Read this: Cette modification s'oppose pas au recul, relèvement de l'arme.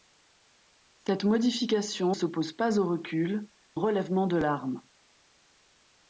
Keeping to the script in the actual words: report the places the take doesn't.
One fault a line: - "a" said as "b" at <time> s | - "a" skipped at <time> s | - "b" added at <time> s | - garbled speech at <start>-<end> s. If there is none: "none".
none